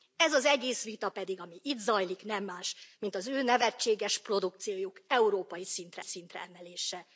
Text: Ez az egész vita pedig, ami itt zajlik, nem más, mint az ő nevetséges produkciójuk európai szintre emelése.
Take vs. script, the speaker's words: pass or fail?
fail